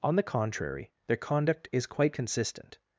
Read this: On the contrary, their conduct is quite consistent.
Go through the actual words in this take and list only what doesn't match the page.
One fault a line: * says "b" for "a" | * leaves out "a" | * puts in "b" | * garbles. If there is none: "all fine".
all fine